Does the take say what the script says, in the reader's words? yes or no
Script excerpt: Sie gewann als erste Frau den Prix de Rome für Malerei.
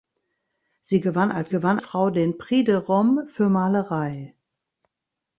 no